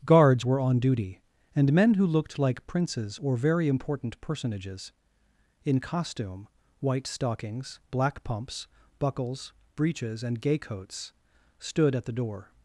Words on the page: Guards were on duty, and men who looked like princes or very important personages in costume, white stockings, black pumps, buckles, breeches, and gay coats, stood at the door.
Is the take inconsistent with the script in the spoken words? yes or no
no